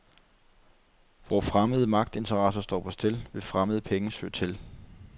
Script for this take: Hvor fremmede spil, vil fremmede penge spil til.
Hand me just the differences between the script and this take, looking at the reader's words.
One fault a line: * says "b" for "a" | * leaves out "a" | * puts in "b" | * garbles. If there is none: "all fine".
* puts in "magtinteresser står på"
* says "søge" for "spil"